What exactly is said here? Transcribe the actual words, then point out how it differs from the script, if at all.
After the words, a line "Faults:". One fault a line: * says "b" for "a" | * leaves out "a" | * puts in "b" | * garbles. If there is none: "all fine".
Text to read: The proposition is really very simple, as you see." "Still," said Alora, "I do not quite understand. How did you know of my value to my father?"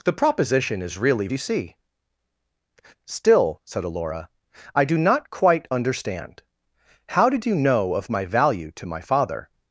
The proposition is really you see." "Still," said Alora, "I do not quite understand. How did you know of my value to my father?"
Faults:
* leaves out "very simple as"